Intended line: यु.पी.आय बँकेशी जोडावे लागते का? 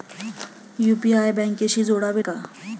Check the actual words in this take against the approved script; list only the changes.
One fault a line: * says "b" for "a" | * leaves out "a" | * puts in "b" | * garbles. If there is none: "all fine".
* leaves out "लागते"